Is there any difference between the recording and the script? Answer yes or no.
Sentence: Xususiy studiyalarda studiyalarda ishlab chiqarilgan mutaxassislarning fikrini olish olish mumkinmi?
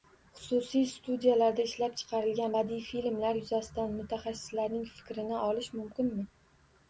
yes